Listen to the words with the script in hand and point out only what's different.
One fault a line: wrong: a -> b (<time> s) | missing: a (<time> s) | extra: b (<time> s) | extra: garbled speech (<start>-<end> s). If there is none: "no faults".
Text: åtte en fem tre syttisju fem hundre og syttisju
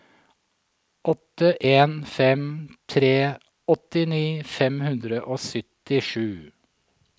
wrong: syttisju -> åttini (3.8 s)